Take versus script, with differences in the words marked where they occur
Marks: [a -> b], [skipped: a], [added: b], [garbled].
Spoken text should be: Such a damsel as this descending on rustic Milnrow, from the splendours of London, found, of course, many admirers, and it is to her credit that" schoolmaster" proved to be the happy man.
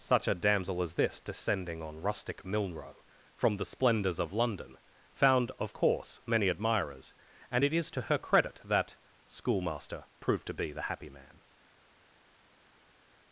Such a damsel as this descending on rustic Milnrow, from the splendours of London, found, of course, many admirers, and it is to her credit that" schoolmaster" proved to be the happy man.